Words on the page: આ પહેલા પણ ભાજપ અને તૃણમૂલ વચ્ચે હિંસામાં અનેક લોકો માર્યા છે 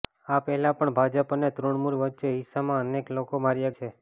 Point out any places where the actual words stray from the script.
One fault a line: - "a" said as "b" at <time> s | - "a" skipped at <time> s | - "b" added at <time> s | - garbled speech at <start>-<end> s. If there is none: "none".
none